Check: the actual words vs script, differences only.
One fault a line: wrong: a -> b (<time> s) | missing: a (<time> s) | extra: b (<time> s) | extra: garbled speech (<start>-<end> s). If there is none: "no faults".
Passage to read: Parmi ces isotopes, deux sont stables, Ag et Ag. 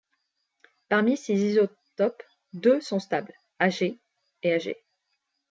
no faults